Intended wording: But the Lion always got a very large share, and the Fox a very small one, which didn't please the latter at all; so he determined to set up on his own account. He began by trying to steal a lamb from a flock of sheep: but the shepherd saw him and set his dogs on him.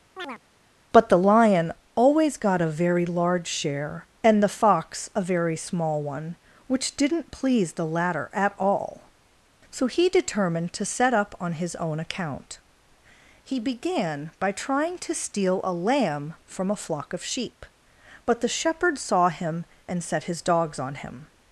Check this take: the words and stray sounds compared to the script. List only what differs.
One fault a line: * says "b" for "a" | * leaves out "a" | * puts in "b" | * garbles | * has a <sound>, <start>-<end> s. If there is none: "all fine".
* has a chirp, 0.2-0.4 s